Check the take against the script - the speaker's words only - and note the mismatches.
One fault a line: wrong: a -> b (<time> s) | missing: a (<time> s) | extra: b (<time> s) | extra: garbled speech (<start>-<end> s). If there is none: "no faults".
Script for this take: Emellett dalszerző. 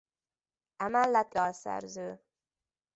no faults